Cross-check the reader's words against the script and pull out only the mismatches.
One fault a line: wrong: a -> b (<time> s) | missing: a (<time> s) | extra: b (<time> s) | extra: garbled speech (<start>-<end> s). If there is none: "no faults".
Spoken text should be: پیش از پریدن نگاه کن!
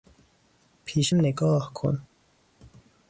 missing: از پریدن (1.1 s)